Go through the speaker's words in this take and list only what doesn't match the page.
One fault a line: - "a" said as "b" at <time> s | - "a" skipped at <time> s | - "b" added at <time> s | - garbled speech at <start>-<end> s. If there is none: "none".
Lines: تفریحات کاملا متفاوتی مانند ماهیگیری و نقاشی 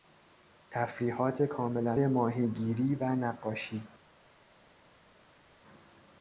- "متفاوتی مانند" skipped at 1.9 s